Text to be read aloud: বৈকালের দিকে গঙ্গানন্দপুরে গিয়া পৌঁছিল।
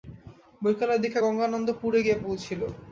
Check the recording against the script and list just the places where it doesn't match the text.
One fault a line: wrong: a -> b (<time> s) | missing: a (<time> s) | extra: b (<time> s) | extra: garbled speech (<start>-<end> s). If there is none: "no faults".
no faults